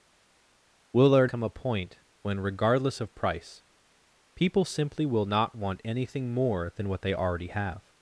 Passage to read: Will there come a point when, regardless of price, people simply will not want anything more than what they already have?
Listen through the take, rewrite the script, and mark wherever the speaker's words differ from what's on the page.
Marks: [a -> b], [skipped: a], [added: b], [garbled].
Will there come a point when, regardless of price, people simply will not want anything more than what they already have?